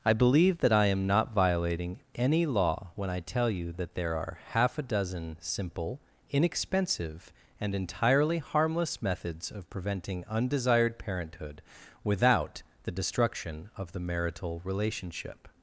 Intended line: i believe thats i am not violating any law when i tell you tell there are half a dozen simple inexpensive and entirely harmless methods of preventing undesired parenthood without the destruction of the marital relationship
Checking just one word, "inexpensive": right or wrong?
right